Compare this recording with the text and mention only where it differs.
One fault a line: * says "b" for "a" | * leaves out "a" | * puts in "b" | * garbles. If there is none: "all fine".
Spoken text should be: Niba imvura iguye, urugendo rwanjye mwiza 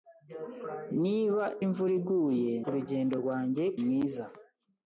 all fine